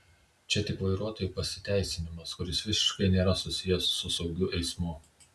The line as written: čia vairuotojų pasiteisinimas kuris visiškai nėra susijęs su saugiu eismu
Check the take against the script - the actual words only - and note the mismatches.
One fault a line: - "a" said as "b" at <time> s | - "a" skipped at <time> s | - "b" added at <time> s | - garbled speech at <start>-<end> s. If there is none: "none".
- "tik" added at 0.7 s